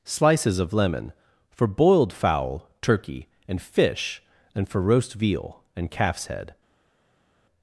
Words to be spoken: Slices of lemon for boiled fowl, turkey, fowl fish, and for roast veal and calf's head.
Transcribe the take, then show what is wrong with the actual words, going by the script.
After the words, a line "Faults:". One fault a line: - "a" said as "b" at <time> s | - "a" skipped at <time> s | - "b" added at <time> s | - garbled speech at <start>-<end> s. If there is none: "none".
Slices of lemon for boiled fowl, turkey, and fish, and for roast veal and calf's head.
Faults:
- "fowl" said as "and" at 3.5 s